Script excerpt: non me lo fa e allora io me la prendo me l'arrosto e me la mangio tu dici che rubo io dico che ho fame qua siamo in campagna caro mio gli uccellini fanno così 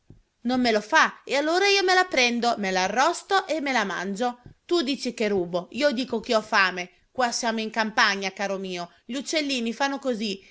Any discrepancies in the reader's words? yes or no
no